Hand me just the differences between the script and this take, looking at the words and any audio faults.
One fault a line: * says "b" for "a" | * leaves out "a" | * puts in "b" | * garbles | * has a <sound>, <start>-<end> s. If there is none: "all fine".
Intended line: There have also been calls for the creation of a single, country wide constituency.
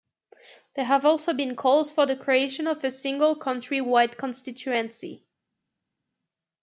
all fine